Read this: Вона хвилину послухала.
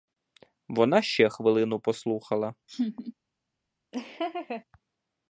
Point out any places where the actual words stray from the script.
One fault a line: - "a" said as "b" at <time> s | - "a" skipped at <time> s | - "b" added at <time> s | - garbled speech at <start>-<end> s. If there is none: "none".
- "ще" added at 1.0 s